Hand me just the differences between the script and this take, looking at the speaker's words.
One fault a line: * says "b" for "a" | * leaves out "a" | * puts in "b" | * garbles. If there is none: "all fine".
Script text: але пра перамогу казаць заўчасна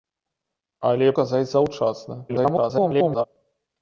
* leaves out "пра перамогу"
* garbles